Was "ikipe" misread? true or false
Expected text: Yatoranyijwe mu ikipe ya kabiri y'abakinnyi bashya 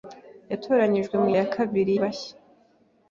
true